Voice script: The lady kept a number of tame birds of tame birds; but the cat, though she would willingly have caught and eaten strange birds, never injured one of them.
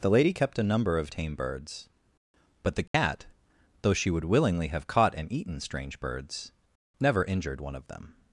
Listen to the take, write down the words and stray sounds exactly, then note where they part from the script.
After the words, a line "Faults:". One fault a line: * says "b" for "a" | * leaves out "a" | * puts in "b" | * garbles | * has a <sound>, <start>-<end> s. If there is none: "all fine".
The lady kept a number of tame birds; but the cat, though she would willingly have caught and eaten strange birds, never injured one of them.
Faults:
* leaves out "of tame birds"
* has a dropout, 2.9-2.9 s